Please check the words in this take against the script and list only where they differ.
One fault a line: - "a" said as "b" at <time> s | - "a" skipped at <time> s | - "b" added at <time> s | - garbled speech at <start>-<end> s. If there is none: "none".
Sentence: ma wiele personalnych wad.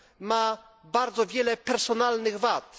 - "bardzo" added at 0.8 s